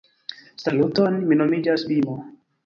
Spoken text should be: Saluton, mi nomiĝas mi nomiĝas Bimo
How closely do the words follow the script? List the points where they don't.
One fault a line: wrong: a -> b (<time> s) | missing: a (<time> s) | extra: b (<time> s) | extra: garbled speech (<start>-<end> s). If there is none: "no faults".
missing: mi nomiĝas (1.9 s)